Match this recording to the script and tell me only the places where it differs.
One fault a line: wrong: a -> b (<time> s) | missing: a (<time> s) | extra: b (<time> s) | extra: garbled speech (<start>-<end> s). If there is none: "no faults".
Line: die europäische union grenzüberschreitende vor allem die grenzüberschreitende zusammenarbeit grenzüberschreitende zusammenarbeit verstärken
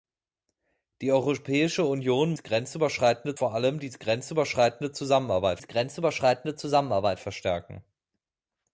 no faults